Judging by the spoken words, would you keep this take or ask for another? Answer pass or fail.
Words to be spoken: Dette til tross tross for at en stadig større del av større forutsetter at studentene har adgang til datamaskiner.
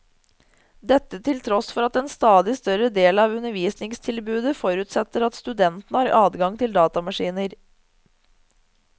fail